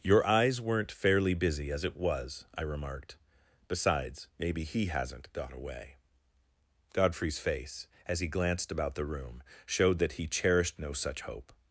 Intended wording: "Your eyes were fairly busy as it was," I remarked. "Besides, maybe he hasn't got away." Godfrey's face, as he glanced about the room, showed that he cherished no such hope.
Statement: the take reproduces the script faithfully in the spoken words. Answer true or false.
false